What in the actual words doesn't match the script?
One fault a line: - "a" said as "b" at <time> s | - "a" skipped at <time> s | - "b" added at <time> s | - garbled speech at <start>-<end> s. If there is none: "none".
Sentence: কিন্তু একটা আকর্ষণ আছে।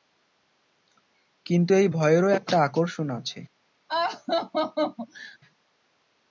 - "এই ভয়েরও" added at 1.7 s